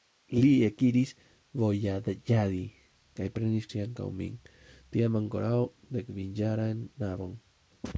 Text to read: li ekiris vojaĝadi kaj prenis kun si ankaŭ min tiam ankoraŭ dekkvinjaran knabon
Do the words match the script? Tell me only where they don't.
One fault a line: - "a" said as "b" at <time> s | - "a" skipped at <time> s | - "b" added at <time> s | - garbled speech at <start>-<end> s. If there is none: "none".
- "kun" skipped at 3.7 s